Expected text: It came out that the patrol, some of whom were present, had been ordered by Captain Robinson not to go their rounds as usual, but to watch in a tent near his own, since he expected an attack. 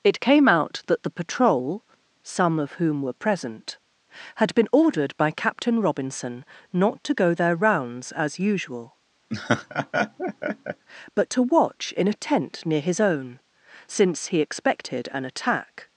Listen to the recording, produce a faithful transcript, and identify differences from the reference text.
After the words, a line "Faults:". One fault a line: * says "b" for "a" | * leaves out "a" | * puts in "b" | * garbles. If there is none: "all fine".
It came out that the patrol, some of whom were present, had been ordered by Captain Robinson not to go their rounds as usual, but to watch in a tent near his own, since he expected an attack.
Faults:
all fine